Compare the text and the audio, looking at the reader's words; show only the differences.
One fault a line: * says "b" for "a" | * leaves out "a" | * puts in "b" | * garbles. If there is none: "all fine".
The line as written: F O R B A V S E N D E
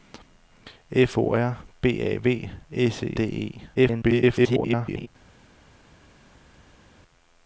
* leaves out "N"
* garbles